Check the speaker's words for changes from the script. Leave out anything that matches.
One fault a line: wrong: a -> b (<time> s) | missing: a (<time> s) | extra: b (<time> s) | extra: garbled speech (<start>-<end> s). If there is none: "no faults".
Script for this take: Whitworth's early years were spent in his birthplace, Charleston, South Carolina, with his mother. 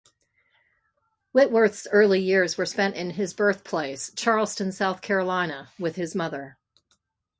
no faults